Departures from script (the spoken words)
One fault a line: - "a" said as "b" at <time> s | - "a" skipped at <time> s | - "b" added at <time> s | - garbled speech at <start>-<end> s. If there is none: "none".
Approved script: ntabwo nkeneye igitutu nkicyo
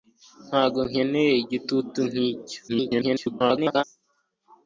- garbled speech at 2.7-3.8 s